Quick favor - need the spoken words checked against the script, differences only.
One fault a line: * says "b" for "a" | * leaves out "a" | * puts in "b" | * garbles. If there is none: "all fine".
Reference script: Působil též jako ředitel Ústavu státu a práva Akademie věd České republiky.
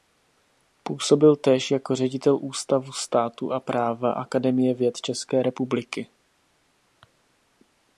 all fine